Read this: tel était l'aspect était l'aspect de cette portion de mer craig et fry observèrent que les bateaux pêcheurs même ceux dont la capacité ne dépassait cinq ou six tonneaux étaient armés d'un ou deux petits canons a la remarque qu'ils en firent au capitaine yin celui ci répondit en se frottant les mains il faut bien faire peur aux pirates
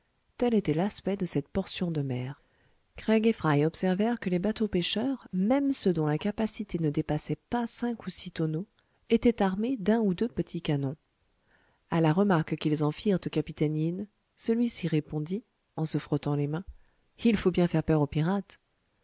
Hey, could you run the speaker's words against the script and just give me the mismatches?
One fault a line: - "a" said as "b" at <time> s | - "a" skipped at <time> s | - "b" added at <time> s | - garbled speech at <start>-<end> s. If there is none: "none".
- "était l'aspect" skipped at 1.1 s
- "pas" added at 7.3 s